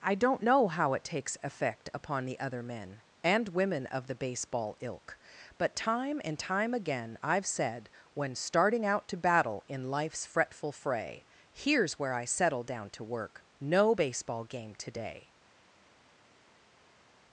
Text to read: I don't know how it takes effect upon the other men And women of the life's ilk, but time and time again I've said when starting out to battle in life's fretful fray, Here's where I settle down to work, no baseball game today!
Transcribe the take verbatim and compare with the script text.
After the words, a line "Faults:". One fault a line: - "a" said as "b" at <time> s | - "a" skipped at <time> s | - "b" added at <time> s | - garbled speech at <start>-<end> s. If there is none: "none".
I don't know how it takes effect upon the other men And women of the baseball ilk, but time and time again I've said when starting out to battle in life's fretful fray, Here's where I settle down to work, no baseball game today!
Faults:
- "life's" said as "baseball" at 4.2 s